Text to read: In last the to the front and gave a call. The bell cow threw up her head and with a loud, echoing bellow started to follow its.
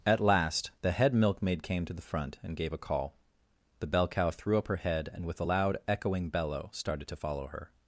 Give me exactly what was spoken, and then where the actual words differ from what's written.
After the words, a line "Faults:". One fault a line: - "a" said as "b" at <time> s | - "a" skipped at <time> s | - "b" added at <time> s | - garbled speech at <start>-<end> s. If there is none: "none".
At last the head milkmaid came to the front and gave a call. The bell cow threw up her head and with a loud, echoing bellow started to follow her.
Faults:
- "In" said as "At" at 0.1 s
- "head milkmaid came" added at 0.9 s
- "its" said as "her" at 7.5 s